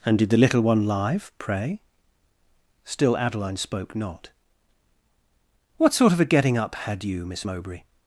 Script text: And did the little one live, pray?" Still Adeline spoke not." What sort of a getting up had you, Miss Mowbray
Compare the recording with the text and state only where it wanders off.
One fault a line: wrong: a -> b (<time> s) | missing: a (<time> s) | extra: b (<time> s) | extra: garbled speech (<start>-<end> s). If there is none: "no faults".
no faults